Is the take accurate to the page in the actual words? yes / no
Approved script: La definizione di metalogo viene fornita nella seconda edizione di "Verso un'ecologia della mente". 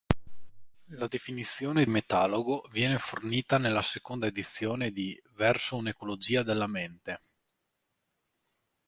no